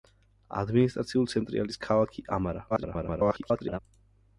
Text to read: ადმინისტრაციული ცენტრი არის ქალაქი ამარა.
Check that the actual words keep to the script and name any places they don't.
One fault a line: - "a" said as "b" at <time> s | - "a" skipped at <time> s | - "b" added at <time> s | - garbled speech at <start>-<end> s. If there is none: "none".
- garbled speech at 2.7-3.8 s